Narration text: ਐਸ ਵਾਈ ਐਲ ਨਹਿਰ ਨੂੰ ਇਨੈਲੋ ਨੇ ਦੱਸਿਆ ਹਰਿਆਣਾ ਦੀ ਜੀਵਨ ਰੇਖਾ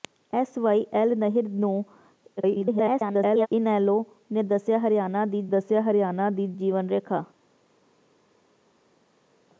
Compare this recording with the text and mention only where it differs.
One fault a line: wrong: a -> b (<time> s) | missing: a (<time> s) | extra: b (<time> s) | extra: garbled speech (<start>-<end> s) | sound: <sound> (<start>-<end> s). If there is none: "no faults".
extra: garbled speech (2.4-3.5 s)
extra: ਦੱਸਿਆ ਹਰਿਆਣਾ ਦੀ (5.4 s)